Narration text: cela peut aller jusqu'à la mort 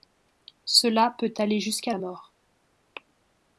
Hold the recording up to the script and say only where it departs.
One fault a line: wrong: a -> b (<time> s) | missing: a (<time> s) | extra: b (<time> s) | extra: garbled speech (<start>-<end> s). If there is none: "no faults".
no faults